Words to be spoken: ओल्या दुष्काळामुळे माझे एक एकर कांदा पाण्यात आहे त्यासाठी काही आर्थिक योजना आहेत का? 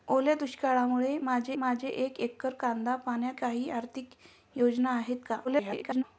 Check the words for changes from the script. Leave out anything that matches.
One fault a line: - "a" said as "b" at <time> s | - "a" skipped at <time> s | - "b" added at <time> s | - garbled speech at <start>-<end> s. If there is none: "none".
- "माझे" added at 1.6 s
- "आहे त्यासाठी" skipped at 3.4 s
- garbled speech at 5.4-6.0 s